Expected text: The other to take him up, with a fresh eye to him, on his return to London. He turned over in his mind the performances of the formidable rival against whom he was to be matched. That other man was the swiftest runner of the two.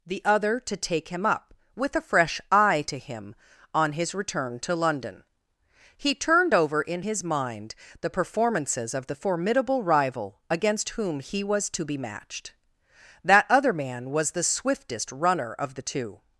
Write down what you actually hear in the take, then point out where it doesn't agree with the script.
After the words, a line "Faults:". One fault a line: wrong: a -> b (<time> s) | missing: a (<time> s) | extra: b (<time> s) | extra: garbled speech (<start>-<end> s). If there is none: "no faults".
The other to take him up, with a fresh eye to him, on his return to London. He turned over in his mind the performances of the formidable rival against whom he was to be matched. That other man was the swiftest runner of the two.
Faults:
no faults